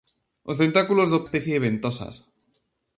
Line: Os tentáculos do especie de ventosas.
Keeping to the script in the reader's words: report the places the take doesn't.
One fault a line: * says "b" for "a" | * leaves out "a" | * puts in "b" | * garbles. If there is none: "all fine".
all fine